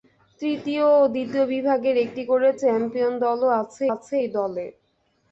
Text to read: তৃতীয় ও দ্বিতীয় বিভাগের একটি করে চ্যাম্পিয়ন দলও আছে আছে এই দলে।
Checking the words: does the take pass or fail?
pass